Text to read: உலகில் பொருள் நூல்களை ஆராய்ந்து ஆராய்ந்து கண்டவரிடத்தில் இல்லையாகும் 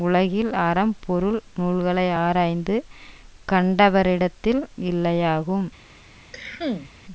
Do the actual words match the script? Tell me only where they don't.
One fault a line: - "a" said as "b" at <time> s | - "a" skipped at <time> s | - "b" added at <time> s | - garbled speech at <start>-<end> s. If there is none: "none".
- "அறம்" added at 0.6 s
- "ஆராய்ந்து" skipped at 2.8 s